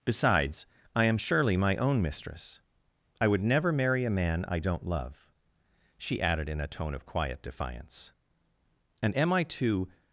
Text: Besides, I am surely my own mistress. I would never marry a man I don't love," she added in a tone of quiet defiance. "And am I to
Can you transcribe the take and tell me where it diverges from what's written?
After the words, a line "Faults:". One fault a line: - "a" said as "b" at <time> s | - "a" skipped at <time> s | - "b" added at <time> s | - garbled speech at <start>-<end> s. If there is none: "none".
Besides, I am surely my own mistress. I would never marry a man I don't love," she added in a tone of quiet defiance. "And am I to
Faults:
none